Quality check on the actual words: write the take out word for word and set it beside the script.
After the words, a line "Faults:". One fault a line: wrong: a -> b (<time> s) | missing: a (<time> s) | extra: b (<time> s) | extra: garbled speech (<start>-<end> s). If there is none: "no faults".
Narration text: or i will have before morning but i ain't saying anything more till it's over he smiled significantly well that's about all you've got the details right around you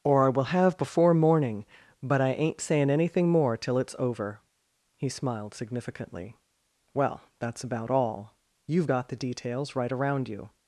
or i will have before morning but i ain't saying anything more till it's over he smiled significantly well that's about all you've got the details right around you
Faults:
no faults